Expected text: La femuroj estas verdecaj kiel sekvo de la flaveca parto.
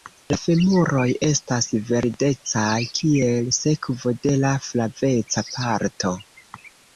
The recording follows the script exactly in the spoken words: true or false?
true